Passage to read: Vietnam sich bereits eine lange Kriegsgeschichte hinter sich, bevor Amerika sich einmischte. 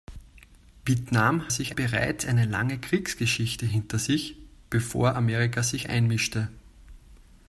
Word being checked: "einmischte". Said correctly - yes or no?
yes